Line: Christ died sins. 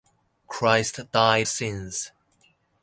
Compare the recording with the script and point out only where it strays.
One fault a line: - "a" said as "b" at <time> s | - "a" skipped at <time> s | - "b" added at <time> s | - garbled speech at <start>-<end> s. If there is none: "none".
none